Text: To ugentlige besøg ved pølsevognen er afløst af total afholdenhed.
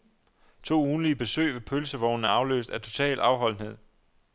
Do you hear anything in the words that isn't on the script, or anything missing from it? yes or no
no